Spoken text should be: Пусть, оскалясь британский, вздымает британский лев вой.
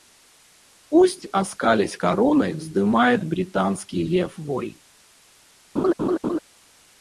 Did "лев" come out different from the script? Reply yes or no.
no